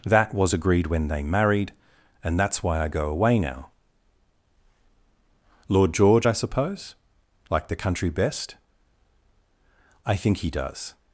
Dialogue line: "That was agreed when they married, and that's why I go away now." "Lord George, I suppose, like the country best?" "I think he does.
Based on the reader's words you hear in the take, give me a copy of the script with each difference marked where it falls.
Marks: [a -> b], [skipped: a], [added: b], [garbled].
"That was agreed when they married, and that's why I go away now." "Lord George, I suppose, like the country best?" "I think he does.